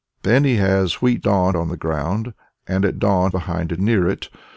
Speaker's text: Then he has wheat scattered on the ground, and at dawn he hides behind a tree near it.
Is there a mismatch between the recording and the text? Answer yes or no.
yes